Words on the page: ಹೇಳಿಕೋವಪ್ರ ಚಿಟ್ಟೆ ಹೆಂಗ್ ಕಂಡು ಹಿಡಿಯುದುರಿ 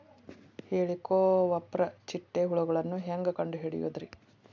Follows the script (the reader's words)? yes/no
no